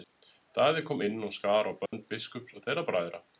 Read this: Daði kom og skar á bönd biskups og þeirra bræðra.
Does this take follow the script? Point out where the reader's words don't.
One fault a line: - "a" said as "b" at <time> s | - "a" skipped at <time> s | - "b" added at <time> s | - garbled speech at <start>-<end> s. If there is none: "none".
- "inn" added at 1.1 s